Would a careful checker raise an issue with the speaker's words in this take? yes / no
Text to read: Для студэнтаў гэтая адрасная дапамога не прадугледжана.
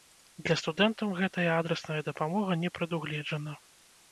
no